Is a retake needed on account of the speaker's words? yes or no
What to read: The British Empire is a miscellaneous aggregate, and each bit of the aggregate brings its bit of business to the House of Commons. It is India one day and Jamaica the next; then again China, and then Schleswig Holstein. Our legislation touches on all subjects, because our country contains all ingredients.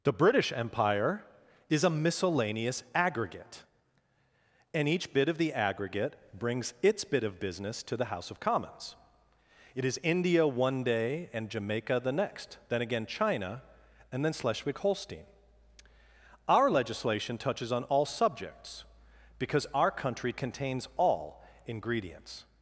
no